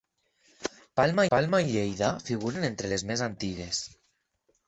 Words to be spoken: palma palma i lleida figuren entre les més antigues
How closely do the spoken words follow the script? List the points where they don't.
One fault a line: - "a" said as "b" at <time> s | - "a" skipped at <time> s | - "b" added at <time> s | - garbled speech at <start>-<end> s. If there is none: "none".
none